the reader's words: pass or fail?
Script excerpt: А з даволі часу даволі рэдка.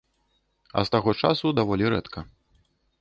fail